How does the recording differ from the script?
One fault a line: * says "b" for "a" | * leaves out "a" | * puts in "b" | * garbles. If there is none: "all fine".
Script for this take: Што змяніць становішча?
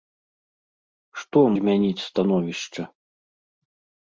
all fine